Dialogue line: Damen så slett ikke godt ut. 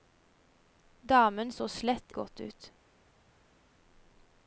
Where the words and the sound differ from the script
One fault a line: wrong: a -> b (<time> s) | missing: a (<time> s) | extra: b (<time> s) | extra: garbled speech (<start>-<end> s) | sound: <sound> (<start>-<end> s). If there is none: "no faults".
missing: ikke (2.1 s)